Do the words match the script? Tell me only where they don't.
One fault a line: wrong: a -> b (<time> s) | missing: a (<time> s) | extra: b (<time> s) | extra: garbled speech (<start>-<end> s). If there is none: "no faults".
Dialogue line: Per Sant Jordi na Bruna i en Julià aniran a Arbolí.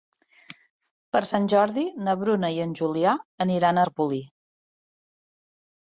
no faults